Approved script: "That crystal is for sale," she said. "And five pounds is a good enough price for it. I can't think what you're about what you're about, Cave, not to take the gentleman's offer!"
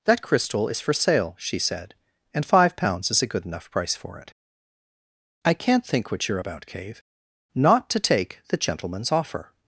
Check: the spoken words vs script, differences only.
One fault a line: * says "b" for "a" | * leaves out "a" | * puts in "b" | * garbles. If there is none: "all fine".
* leaves out "what you're about"